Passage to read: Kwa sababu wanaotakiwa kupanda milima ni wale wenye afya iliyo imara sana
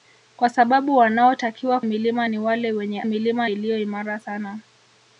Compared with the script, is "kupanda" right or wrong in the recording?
wrong